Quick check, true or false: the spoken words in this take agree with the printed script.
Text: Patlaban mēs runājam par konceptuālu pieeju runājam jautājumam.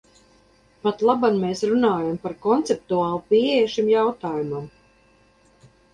false